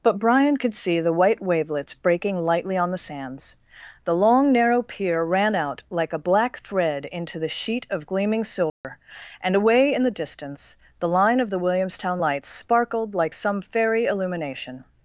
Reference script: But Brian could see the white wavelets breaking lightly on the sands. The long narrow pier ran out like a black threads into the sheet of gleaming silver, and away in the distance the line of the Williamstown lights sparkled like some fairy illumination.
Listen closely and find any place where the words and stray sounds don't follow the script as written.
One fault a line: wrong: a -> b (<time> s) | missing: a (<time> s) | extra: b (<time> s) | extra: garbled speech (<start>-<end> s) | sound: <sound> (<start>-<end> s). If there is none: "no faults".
wrong: threads -> thread (6.6 s)
sound: dropout (8.7-8.8 s)